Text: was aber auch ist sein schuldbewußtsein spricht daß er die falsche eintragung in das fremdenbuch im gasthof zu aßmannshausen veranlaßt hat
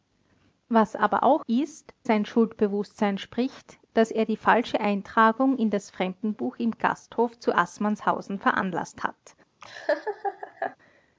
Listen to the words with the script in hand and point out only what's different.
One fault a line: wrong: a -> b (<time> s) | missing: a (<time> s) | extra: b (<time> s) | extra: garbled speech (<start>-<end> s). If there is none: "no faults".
no faults